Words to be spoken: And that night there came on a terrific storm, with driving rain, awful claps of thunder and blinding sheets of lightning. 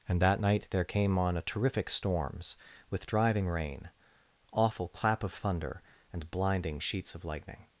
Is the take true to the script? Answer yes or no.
no